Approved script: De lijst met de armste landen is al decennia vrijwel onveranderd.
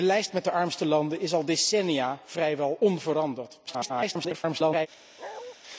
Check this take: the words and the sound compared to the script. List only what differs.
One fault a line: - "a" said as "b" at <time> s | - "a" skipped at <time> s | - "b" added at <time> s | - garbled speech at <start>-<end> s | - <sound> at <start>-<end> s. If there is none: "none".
- garbled speech at 3.7-4.9 s
- bark at 5.2-5.6 s